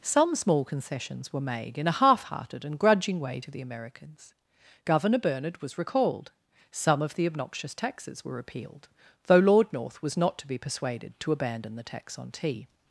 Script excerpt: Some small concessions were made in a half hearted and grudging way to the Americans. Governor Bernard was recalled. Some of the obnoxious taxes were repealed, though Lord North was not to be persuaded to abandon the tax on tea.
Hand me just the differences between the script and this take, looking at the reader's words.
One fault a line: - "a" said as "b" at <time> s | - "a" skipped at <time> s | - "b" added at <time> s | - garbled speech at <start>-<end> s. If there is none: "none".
none